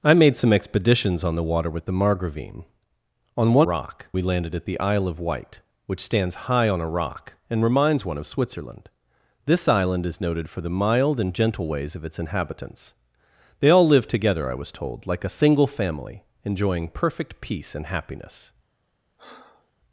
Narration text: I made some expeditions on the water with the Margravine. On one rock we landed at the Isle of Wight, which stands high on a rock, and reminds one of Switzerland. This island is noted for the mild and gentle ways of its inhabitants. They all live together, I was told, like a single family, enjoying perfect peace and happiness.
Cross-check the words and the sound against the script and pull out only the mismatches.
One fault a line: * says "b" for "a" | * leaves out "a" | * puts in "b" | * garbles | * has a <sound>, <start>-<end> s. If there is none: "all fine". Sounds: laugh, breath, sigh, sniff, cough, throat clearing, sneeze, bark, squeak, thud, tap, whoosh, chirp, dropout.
* has a breath, 19.2-19.7 s